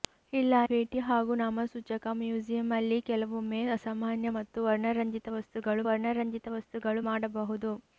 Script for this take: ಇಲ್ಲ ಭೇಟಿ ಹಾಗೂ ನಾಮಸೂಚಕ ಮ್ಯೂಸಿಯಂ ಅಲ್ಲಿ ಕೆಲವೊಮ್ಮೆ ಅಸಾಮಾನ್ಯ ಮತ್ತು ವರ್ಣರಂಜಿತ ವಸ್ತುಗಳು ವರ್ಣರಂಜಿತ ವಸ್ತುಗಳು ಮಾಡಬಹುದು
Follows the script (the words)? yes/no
yes